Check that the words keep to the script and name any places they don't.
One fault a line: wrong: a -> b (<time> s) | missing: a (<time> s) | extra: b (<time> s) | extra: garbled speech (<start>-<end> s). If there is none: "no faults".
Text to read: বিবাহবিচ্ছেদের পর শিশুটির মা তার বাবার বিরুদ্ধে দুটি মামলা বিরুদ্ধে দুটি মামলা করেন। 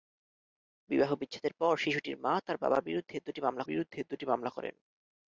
no faults